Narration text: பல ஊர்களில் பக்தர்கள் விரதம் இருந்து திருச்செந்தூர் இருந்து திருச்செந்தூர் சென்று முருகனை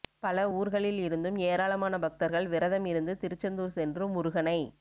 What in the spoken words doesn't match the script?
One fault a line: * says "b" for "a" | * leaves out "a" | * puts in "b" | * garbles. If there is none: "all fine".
* puts in "இருந்தும் ஏராளமான"
* leaves out "இருந்து திருச்செந்தூர்"